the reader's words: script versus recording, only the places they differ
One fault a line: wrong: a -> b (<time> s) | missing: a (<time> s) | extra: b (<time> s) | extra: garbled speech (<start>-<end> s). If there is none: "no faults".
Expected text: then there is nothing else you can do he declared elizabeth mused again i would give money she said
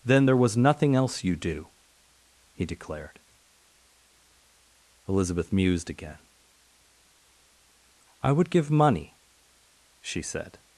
wrong: is -> was (0.4 s)
missing: can (1.3 s)